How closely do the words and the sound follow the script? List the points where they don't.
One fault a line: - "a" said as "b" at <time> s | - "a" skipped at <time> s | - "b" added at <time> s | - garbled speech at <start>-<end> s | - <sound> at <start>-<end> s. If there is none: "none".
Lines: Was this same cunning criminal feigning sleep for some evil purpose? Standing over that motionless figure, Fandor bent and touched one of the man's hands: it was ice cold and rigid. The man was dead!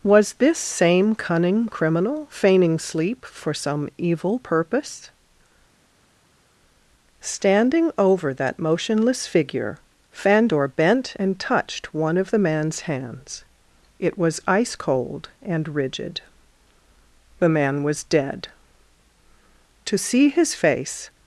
- "To see his face" added at 19.8 s